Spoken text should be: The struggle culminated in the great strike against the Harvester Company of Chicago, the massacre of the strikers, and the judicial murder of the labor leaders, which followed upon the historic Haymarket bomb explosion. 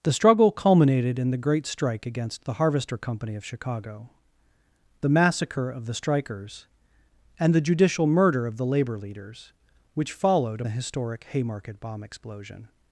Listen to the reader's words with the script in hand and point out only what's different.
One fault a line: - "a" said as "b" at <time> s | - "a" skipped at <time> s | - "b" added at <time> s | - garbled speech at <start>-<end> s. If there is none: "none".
- "upon" skipped at 10.6 s